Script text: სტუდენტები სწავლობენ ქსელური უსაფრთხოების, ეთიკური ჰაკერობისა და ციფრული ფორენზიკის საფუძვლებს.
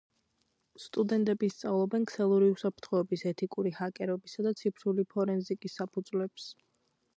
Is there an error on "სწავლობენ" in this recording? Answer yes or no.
no